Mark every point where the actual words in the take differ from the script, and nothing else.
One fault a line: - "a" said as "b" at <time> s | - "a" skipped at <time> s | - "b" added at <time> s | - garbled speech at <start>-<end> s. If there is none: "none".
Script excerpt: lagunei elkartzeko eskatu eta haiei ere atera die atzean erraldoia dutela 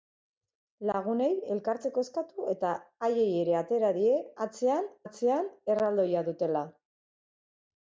- "atzean" added at 5.1 s